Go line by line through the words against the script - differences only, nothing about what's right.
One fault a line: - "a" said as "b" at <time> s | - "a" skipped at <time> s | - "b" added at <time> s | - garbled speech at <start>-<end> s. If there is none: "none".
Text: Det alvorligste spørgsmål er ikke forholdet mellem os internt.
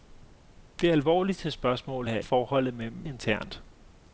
- "ikke" skipped at 2.2 s
- "os" skipped at 3.1 s